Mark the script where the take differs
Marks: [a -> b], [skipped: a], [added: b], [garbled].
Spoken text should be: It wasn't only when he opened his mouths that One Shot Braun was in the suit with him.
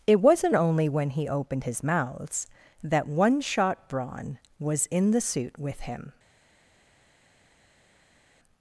It wasn't only when he opened his mouths that One Shot Braun was in the suit with him.